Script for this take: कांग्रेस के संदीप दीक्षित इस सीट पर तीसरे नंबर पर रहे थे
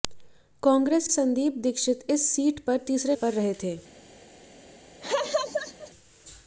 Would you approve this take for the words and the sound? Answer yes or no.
no